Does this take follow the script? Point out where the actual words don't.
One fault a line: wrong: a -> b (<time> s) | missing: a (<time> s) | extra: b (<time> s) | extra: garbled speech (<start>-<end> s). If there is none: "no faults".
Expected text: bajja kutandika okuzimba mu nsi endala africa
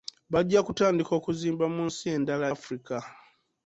no faults